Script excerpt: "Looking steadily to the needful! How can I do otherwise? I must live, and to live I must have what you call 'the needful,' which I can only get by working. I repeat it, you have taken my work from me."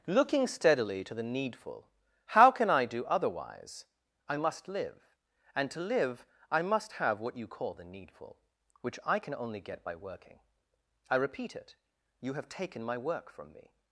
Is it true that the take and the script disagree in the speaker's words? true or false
false